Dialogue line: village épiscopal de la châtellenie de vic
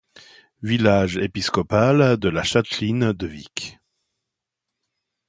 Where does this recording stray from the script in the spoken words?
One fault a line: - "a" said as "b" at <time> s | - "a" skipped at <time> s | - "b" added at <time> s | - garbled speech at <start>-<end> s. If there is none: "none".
none